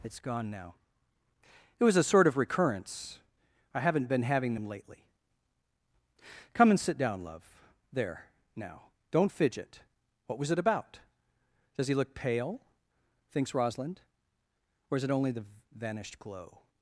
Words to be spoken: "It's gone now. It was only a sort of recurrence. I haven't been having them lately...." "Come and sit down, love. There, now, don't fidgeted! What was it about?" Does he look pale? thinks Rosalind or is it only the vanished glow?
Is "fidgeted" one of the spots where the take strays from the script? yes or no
yes